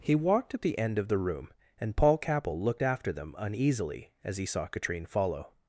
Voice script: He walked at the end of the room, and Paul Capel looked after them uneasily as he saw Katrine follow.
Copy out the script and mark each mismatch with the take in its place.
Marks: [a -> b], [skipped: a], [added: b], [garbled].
He walked at the end of the room, and Paul Capel looked after them uneasily as he saw Katrine follow.